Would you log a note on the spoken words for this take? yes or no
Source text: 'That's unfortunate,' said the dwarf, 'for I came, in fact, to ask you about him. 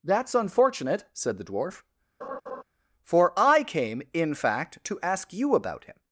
no